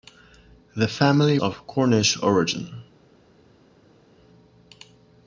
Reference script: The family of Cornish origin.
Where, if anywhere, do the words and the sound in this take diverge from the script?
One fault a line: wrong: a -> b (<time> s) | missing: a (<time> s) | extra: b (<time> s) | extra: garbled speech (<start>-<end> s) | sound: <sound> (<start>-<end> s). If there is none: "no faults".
no faults